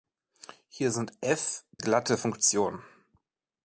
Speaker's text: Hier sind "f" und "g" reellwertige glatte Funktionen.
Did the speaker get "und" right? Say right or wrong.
wrong